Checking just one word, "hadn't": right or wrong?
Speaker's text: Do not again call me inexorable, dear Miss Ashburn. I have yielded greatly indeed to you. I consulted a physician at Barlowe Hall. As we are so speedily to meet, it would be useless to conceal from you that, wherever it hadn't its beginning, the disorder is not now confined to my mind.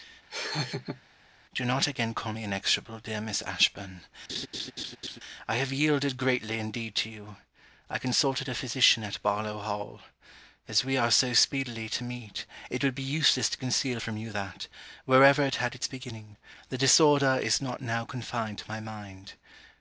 wrong